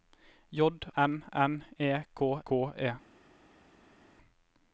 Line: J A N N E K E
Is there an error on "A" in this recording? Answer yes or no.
yes